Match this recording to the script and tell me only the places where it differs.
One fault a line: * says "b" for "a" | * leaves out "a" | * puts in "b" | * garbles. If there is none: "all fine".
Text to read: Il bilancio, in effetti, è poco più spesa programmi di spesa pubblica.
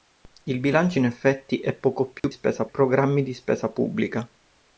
all fine